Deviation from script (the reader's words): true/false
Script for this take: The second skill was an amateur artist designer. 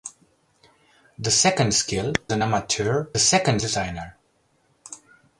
true